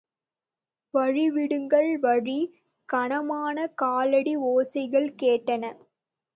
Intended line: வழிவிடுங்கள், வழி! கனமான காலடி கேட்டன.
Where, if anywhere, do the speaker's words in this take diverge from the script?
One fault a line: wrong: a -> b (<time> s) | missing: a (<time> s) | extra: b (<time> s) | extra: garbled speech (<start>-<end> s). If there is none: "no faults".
extra: ஓசைகள் (4.5 s)